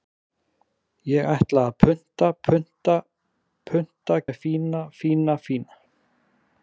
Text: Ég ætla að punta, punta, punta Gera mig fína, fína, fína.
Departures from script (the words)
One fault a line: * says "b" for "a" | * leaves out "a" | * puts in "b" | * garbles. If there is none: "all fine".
* leaves out "Gera"